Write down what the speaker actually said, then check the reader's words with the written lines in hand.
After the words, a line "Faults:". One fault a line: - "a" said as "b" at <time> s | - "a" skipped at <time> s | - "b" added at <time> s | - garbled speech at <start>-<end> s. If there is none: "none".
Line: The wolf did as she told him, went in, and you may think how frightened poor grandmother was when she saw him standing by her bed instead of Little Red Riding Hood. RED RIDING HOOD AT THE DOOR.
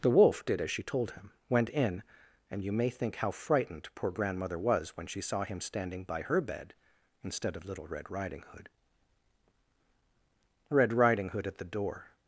The wolf did as she told him, went in, and you may think how frightened poor grandmother was when she saw him standing by her bed instead of Little Red Riding Hood. RED RIDING HOOD AT THE DOOR.
Faults:
none